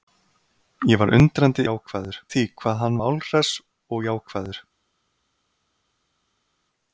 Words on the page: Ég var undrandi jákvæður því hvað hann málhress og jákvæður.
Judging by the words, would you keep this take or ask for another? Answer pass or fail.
pass